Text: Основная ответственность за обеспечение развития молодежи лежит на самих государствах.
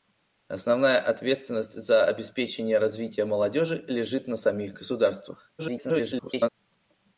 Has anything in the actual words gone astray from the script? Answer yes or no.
yes